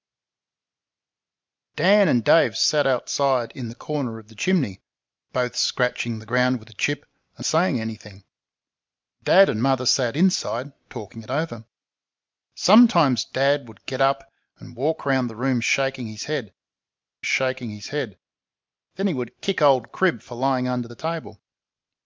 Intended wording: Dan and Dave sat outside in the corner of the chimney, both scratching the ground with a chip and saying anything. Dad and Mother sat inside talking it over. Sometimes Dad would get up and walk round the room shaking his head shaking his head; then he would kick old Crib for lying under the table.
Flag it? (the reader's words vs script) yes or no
no